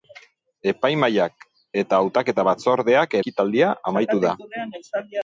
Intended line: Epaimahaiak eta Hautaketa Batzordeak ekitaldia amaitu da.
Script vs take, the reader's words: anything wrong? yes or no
no